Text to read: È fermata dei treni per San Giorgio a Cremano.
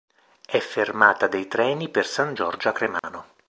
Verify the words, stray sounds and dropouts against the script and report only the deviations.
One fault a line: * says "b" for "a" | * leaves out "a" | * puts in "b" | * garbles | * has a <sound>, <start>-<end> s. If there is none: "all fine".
* has a dropout, 3.0-3.0 s